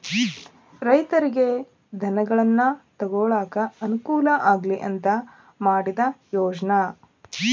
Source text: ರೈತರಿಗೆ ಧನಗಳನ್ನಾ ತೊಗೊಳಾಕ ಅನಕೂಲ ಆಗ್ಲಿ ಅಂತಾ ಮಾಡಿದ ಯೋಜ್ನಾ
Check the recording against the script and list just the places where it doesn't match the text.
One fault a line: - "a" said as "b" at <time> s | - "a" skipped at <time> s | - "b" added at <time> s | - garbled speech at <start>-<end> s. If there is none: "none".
none